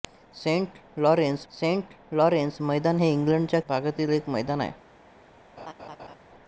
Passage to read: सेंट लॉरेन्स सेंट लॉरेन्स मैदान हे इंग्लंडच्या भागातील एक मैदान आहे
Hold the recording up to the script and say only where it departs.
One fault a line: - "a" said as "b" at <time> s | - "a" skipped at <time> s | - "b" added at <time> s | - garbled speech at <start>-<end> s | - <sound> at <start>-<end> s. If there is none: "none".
- laugh at 5.6-6.2 s